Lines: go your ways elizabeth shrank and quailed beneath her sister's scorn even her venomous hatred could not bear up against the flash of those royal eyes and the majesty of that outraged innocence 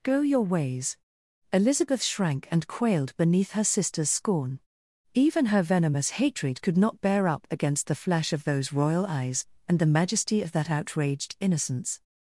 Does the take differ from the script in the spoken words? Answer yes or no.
no